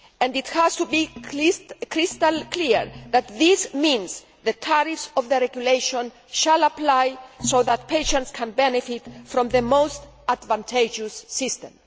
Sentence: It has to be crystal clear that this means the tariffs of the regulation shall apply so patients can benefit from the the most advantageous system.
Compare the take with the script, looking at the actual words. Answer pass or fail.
fail